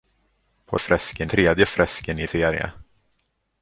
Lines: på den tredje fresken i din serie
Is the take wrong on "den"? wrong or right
wrong